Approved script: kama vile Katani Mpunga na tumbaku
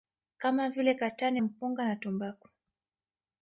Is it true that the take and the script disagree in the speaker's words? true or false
false